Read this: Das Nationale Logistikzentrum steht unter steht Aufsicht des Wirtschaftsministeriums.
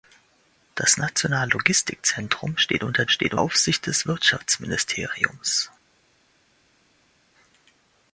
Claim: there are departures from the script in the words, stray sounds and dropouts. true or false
false